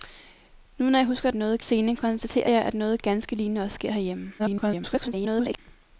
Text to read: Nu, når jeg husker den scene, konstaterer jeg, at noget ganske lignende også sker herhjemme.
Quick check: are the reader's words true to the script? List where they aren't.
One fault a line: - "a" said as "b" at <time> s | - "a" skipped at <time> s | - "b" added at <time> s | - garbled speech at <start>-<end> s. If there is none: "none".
- "den" said as "noget" at 1.3 s
- garbled speech at 4.4-5.6 s